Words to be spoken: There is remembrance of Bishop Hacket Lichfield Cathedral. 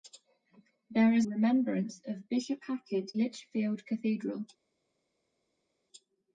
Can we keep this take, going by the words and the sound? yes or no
yes